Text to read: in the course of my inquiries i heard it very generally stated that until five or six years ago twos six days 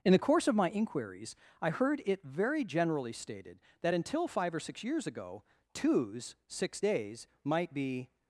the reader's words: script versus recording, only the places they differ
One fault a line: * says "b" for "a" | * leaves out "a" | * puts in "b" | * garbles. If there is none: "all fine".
* puts in "might be"